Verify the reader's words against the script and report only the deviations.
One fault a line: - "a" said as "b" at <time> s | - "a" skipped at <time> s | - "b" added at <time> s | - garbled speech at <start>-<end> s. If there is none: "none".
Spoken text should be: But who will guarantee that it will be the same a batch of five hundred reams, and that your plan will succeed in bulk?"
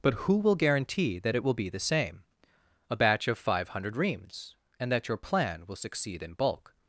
none